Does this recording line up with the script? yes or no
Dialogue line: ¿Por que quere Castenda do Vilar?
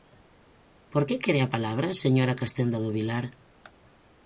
no